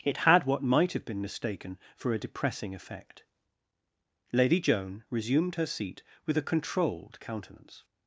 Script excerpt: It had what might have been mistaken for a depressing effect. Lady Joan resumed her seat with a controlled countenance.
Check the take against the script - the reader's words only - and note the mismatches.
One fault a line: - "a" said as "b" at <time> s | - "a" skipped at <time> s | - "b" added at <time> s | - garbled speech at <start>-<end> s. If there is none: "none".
none